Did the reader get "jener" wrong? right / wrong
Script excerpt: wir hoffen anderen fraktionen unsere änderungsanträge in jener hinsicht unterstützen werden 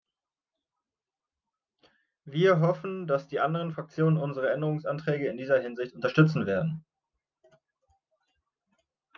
wrong